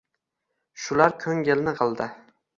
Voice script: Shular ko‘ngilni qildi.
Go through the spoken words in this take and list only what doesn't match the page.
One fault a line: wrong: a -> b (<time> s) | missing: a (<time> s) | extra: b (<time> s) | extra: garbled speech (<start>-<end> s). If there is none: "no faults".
no faults